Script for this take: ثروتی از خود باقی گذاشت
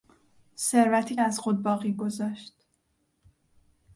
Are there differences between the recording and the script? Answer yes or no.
no